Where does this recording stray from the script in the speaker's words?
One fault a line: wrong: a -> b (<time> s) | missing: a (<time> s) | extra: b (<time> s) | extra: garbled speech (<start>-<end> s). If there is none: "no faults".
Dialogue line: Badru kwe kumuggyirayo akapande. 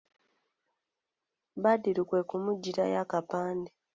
no faults